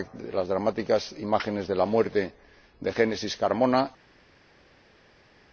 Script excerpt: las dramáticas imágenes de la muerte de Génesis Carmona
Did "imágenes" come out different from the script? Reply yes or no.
no